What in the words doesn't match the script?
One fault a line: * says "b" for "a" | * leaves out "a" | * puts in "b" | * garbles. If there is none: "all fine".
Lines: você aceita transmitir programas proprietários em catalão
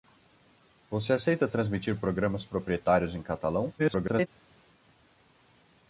* garbles